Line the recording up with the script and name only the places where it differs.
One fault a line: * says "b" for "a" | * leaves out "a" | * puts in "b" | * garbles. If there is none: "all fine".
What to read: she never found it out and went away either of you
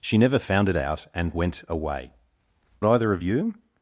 all fine